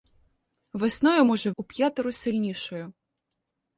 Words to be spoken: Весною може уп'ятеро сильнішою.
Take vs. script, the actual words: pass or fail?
pass